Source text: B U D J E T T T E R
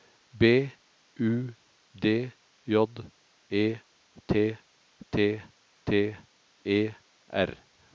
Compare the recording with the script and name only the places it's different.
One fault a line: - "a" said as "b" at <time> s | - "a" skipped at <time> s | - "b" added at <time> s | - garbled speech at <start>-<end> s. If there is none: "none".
none